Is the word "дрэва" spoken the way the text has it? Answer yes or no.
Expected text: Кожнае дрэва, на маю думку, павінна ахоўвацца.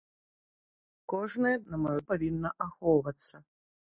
no